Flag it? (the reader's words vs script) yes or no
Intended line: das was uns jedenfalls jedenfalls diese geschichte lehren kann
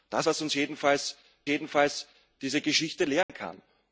no